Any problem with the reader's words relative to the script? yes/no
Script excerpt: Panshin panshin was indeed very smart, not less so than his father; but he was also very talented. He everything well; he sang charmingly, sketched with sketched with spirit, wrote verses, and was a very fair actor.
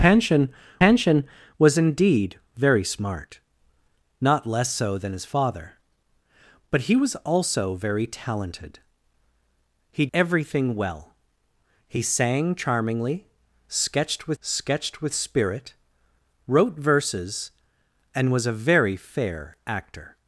no